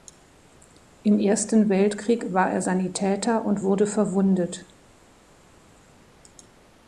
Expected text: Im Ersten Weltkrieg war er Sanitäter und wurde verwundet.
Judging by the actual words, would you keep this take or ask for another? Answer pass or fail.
pass